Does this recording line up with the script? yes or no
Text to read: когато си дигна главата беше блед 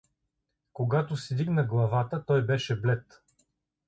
no